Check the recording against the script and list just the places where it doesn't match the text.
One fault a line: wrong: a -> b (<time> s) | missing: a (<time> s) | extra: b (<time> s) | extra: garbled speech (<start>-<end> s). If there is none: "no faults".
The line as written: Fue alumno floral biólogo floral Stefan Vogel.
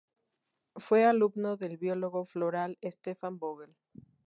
wrong: floral -> del (1.6 s)